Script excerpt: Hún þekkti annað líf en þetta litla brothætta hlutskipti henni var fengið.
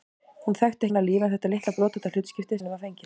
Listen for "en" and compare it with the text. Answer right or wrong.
right